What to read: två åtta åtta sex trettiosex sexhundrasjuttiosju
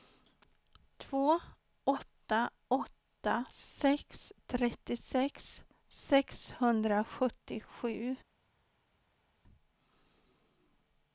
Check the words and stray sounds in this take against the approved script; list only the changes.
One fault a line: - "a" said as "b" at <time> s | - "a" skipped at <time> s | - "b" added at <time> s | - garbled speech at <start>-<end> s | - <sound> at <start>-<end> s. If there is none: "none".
none